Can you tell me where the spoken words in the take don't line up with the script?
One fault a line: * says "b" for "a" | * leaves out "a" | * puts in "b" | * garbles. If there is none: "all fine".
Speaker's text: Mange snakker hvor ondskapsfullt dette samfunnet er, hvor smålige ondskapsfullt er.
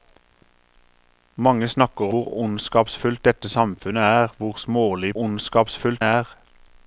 all fine